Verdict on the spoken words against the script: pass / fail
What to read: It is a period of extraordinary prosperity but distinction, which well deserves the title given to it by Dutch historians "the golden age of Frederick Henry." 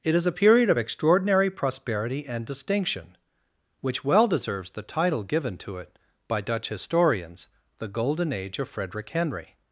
fail